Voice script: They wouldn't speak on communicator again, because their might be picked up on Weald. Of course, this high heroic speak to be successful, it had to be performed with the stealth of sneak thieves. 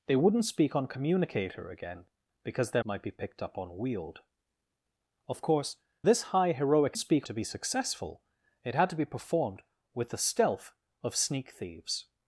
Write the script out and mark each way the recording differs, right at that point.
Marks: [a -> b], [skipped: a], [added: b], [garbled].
They wouldn't speak on communicator again, because their might be picked up on Weald. Of course, this high heroic speak to be successful, it had to be performed with the stealth of sneak thieves.